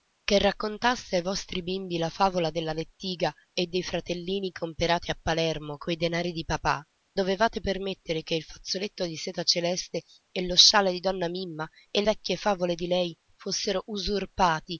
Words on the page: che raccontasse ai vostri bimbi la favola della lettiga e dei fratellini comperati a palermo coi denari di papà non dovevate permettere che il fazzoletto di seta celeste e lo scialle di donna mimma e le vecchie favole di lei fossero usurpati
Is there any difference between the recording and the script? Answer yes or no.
yes